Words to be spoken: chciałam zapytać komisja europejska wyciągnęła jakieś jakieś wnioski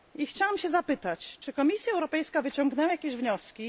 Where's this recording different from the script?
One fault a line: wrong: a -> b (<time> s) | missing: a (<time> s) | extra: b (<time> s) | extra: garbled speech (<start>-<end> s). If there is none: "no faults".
extra: czy (1.4 s)
missing: jakieś (3.2 s)